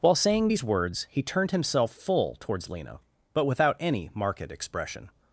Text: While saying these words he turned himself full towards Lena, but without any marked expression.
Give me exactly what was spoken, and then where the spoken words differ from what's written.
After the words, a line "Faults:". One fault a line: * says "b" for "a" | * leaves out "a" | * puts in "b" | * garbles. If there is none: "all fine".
While saying these words he turned himself full towards Lena, but without any marked expression.
Faults:
all fine